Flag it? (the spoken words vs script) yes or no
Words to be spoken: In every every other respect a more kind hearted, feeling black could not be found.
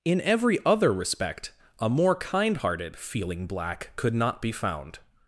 yes